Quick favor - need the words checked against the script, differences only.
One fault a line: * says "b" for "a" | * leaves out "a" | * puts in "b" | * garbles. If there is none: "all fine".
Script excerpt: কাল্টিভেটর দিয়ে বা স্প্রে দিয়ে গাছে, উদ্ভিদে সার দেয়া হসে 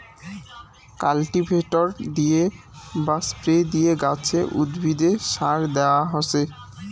all fine